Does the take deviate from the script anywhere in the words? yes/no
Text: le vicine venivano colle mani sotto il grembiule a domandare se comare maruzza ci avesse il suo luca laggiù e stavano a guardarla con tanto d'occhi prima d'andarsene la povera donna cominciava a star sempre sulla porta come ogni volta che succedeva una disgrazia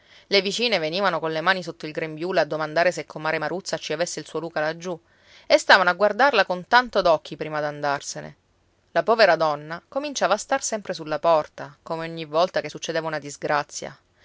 no